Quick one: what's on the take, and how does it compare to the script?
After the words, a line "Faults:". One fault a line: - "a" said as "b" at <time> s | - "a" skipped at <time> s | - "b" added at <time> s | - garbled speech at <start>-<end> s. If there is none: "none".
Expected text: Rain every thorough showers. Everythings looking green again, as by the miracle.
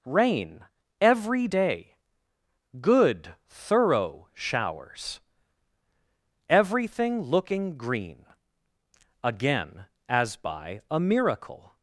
Rain every day; good, thorough showers. Everything looking green again, as by a miracle.
Faults:
- "day good" added at 1.4 s
- "Everythings" said as "Everything" at 6.5 s
- "the" said as "a" at 10.9 s